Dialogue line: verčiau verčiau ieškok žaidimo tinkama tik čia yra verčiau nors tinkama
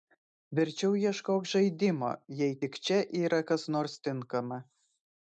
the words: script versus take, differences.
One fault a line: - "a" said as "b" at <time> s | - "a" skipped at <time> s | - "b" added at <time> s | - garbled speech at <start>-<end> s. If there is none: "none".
- "verčiau" skipped at 0.9 s
- "tinkama" said as "jei" at 2.4 s
- "verčiau" said as "kas" at 3.5 s